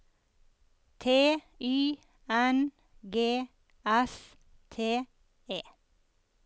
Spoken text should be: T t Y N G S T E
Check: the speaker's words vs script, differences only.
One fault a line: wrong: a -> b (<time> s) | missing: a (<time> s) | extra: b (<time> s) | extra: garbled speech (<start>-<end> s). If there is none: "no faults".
missing: t (1.4 s)